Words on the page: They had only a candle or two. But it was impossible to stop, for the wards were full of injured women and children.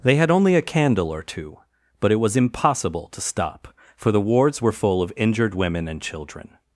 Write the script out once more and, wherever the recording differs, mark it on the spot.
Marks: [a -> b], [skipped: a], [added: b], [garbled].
They had only a candle or two. But it was impossible to stop, for the wards were full of injured women and children.